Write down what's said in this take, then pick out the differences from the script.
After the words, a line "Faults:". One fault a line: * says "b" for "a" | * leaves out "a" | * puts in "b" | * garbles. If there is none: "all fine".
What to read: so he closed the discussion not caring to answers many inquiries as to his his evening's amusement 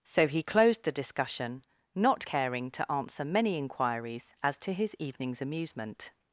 so he closed the discussion not caring to answer many inquiries as to his evening's amusement
Faults:
* says "answer" for "answers"
* leaves out "his"